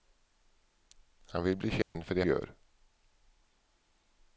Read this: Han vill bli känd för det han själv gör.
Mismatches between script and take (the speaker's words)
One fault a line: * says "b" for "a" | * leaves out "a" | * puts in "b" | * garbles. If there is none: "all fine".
* leaves out "han själv"